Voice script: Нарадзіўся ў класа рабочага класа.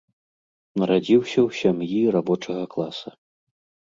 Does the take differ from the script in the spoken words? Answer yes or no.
yes